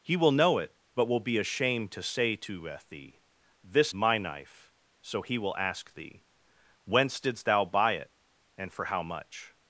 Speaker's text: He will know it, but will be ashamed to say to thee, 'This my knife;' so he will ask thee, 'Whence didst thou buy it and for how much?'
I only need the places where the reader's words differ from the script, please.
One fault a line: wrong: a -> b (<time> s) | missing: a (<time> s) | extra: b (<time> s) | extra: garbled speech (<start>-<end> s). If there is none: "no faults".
no faults